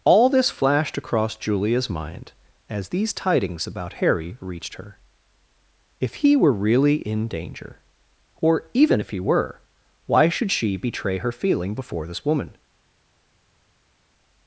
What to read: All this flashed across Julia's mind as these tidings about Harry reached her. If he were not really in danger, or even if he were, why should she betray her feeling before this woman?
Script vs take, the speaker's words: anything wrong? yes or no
yes